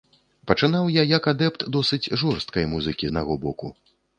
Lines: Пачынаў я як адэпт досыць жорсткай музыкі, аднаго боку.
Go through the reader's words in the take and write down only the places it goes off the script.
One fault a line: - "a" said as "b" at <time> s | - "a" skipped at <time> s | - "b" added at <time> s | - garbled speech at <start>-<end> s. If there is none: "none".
none